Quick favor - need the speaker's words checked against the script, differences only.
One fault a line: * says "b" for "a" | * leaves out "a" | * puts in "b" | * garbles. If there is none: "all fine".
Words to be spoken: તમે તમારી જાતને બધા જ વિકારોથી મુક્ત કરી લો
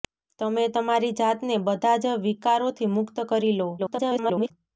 * garbles